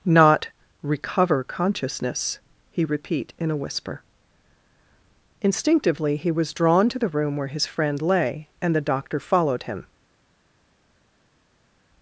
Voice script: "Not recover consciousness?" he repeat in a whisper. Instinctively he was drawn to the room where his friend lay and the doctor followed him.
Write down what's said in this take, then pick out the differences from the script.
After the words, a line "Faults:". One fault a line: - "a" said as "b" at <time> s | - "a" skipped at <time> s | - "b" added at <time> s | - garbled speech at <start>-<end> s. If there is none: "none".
"Not recover consciousness?" he repeat in a whisper. Instinctively he was drawn to the room where his friend lay and the doctor followed him.
Faults:
none